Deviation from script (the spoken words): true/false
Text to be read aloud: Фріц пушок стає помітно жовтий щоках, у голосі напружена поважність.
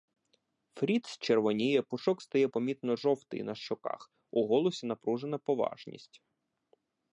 true